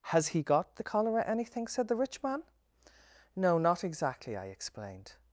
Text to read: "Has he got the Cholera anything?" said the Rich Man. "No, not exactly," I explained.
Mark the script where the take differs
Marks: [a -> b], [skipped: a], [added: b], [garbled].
"Has he got the Cholera anything?" said the Rich Man. "No, not exactly," I explained.